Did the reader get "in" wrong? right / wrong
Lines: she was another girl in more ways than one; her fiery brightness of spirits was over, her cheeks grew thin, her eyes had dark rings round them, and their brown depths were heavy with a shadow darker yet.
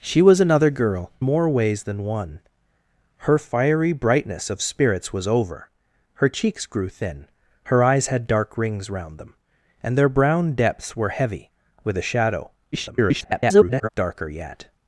wrong